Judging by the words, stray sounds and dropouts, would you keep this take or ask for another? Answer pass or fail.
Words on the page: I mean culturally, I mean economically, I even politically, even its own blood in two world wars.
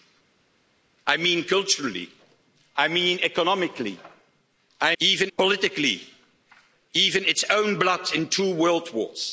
pass